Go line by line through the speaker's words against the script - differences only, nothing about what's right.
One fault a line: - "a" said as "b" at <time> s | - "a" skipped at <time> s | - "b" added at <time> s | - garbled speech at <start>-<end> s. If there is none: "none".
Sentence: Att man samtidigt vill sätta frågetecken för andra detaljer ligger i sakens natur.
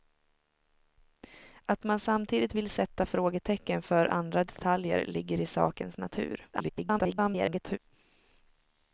- garbled speech at 6.5-7.8 s